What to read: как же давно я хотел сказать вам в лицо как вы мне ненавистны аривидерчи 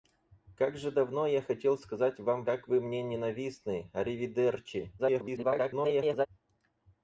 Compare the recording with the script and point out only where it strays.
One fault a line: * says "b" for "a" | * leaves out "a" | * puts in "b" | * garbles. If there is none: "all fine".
* leaves out "лицо"
* garbles